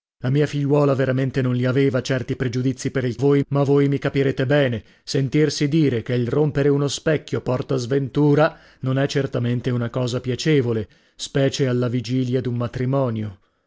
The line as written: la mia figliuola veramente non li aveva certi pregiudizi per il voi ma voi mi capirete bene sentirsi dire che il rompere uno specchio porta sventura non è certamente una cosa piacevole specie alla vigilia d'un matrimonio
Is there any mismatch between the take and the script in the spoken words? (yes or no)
no